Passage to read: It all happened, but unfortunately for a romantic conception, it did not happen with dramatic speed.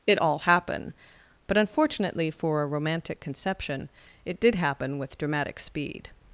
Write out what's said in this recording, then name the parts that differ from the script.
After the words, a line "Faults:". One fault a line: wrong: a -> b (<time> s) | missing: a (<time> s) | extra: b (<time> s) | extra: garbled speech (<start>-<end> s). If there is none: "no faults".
It all happen, but unfortunately for a romantic conception, it did happen with dramatic speed.
Faults:
wrong: happened -> happen (0.4 s)
missing: not (4.6 s)